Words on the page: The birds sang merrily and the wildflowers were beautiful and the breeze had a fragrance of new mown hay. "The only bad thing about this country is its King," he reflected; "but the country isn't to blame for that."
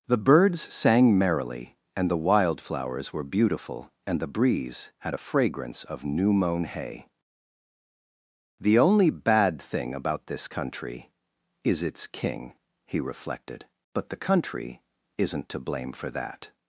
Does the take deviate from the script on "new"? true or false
false